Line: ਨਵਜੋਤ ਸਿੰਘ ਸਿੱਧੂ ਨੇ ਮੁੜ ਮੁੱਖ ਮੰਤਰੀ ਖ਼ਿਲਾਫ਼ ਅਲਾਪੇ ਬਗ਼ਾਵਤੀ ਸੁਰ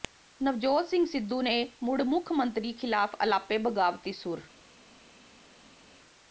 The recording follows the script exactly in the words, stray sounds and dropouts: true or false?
true